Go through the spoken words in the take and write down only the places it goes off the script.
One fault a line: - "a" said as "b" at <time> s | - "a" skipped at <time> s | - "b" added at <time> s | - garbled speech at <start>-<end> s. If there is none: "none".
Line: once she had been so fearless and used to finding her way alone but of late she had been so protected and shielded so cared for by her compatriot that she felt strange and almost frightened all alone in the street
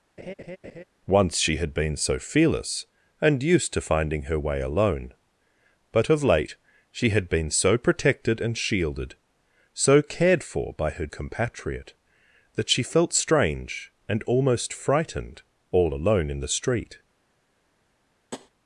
none